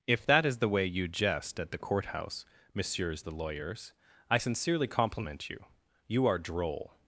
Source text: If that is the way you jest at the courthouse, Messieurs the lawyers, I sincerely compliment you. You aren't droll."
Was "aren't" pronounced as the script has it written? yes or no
no